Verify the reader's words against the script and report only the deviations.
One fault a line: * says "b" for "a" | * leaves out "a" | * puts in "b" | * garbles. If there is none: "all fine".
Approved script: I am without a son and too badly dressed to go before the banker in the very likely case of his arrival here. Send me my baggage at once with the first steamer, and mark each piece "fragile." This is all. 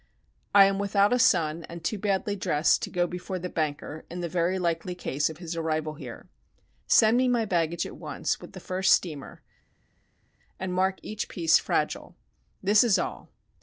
all fine